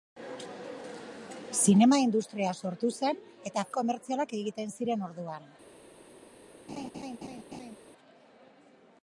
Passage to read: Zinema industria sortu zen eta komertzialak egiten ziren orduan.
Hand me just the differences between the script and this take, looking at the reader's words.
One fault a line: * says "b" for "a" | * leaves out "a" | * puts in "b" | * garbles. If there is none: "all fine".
all fine